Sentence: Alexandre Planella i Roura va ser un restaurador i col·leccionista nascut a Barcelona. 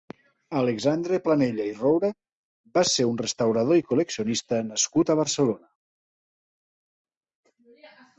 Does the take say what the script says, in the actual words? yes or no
yes